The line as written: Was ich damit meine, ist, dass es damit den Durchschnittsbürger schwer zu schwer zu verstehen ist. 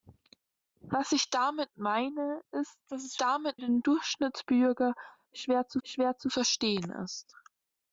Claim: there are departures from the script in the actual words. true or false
false